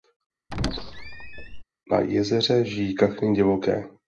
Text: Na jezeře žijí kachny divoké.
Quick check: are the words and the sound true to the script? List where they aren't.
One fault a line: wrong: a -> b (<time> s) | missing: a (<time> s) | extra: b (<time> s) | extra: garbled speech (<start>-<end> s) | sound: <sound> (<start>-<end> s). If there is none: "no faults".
sound: squeak (0.5-1.6 s)